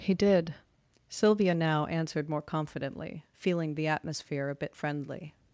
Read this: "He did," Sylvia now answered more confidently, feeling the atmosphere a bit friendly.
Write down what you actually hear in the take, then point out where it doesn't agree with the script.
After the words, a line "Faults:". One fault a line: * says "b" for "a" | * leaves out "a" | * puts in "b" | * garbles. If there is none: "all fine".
"He did," Sylvia now answered more confidently, feeling the atmosphere a bit friendly.
Faults:
all fine